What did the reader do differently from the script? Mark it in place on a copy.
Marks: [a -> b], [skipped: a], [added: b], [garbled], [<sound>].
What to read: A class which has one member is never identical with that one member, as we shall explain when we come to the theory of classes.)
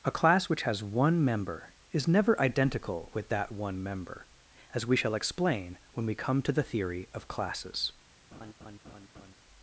A class which has one member is never identical with that one member, as we shall explain when we come to the theory of classes.) [laugh]